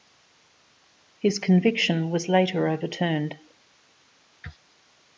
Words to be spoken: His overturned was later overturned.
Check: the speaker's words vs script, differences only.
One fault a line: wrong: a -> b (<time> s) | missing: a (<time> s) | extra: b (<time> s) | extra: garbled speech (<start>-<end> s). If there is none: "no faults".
wrong: overturned -> conviction (1.4 s)